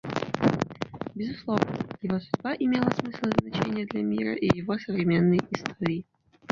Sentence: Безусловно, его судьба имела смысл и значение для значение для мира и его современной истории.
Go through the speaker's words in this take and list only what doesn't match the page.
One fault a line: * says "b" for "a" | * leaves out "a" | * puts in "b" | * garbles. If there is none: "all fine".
* leaves out "значение для"